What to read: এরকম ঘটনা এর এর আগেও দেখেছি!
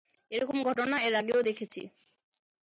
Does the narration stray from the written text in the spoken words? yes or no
yes